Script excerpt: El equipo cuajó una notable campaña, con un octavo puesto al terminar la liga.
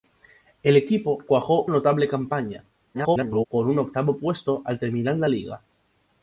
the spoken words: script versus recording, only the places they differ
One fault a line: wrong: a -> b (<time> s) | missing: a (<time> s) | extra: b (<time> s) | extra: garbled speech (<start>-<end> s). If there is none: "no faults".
missing: una (1.6 s)
extra: garbled speech (2.9-3.5 s)